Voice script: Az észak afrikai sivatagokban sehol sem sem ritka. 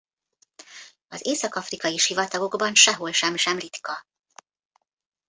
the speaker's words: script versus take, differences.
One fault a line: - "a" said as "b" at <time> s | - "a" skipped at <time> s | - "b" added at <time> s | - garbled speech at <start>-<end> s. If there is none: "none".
none